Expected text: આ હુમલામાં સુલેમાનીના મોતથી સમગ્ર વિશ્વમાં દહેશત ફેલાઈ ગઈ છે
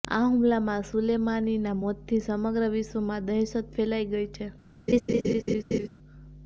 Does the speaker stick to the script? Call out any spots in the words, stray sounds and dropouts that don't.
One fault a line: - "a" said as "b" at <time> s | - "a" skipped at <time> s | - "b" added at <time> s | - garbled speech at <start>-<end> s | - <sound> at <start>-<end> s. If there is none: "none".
- laugh at 4.9-5.9 s